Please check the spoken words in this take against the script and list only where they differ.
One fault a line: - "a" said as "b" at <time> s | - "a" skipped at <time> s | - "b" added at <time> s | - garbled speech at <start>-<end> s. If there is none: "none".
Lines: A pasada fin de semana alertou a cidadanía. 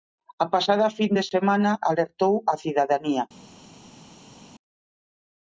none